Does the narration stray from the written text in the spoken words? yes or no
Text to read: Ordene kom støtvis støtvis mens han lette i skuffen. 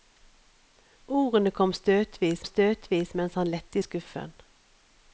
no